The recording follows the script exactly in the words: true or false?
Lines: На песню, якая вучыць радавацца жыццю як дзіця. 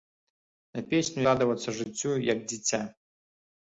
false